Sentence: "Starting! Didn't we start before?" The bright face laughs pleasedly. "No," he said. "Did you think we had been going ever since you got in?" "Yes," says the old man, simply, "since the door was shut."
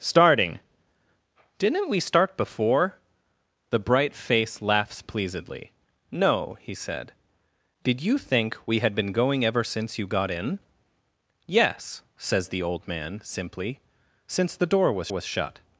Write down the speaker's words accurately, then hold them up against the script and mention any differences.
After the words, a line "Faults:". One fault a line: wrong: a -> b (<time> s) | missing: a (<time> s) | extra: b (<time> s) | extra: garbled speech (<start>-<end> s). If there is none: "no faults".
"Starting! Didn't we start before?" The bright face laughs pleasedly. "No," he said. "Did you think we had been going ever since you got in?" "Yes," says the old man, simply, "since the door was was shut."
Faults:
extra: was (15.1 s)